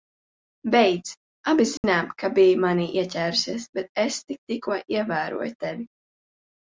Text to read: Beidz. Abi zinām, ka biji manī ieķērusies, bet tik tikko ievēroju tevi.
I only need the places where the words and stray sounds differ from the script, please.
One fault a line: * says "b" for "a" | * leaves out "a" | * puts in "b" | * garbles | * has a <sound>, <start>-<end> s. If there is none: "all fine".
* has a dropout, 1.8-1.8 s
* puts in "es"